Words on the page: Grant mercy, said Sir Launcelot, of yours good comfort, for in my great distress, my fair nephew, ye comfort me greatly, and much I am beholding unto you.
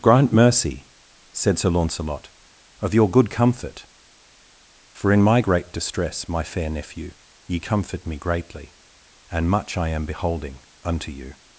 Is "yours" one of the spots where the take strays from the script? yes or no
yes